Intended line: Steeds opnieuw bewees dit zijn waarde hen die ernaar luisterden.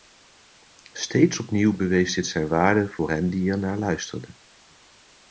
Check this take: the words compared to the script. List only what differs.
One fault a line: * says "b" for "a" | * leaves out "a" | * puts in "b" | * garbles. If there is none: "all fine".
* puts in "voor"